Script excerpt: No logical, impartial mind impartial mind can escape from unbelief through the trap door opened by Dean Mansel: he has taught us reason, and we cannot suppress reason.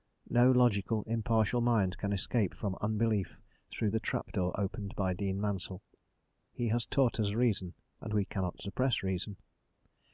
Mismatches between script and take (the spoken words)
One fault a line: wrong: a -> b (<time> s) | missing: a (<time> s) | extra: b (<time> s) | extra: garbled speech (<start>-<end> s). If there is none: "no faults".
missing: impartial mind (2.0 s)